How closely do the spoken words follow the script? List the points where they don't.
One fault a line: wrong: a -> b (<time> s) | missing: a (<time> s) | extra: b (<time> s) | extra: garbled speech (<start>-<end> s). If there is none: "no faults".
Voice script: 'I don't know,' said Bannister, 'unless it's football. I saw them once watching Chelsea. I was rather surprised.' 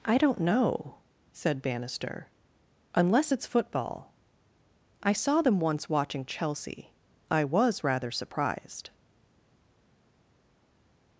no faults